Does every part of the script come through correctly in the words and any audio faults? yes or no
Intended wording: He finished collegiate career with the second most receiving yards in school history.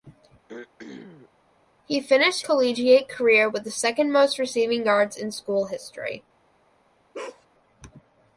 no